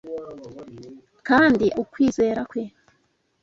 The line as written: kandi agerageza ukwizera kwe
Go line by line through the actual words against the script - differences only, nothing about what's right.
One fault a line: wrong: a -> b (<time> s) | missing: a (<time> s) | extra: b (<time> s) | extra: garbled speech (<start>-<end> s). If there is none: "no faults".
missing: agerageza (1.6 s)